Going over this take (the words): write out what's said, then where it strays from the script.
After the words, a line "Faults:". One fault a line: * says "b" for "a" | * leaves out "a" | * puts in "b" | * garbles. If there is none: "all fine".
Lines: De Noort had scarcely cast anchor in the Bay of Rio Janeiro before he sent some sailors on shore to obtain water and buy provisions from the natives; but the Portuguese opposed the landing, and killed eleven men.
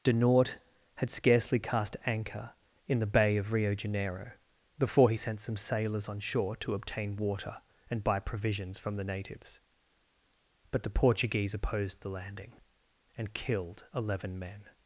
De Noort had scarcely cast anchor in the Bay of Rio Janeiro before he sent some sailors on shore to obtain water and buy provisions from the natives; but the Portuguese opposed the landing, and killed eleven men.
Faults:
all fine